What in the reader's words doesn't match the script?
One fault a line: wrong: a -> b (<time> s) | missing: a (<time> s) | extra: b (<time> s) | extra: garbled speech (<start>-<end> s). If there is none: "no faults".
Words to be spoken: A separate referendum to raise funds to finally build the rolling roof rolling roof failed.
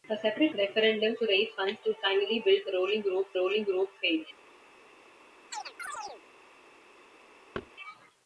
no faults